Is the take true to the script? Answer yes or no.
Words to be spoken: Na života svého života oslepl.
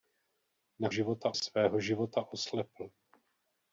yes